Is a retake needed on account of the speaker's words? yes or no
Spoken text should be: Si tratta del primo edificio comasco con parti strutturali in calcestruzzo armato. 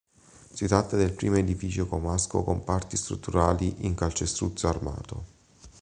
no